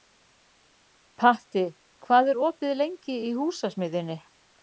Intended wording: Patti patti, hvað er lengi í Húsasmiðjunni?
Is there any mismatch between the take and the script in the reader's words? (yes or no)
yes